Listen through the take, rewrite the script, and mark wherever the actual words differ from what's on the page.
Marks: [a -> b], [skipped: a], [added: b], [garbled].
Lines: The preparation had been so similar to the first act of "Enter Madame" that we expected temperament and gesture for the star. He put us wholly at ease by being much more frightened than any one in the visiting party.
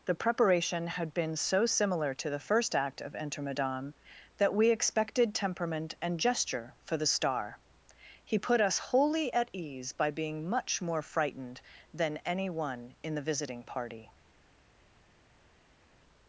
The preparation had been so similar to the first act of "Enter Madame" that we expected temperament and gesture for the star. He put us wholly at ease by being much more frightened than any one in the visiting party.